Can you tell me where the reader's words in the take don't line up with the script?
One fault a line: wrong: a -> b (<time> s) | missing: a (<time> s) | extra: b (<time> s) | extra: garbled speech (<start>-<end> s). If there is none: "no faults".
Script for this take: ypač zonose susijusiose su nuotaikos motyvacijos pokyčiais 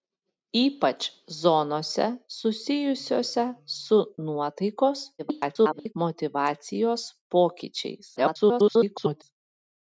extra: garbled speech (5.2-5.9 s)
extra: garbled speech (8.2-9.2 s)